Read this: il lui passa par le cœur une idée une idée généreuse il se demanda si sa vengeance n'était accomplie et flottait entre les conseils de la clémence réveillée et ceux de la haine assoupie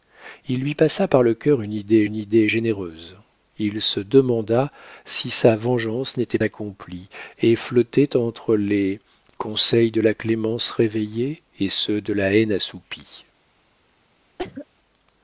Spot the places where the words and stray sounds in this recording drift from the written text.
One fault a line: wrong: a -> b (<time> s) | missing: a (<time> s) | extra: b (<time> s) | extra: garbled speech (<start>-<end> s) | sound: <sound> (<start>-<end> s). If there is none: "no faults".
sound: cough (14.4-14.7 s)